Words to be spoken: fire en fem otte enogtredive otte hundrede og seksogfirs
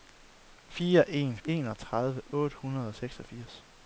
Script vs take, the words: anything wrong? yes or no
yes